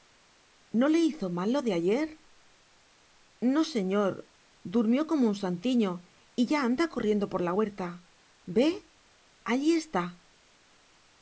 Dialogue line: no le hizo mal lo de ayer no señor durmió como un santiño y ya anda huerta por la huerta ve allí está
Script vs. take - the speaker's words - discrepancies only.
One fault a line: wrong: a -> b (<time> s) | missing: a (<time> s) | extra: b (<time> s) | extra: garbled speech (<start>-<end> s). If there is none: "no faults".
wrong: huerta -> corriendo (6.9 s)